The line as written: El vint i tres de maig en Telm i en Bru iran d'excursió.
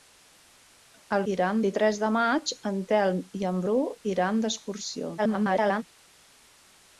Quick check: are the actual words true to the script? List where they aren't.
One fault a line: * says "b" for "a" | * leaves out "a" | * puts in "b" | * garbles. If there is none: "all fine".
* says "iran" for "vint"
* garbles